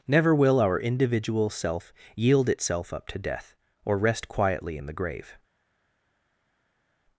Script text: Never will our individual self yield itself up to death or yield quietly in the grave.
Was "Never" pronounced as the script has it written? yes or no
yes